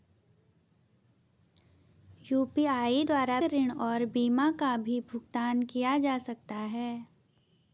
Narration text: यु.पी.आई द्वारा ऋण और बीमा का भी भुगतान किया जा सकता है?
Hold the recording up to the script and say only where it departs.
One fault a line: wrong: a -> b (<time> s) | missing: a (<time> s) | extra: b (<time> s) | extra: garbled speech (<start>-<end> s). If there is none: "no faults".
no faults